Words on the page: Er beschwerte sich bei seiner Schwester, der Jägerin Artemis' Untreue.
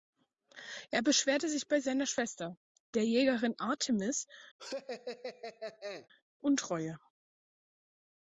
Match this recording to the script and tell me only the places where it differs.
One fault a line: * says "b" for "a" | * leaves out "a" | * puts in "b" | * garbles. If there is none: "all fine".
all fine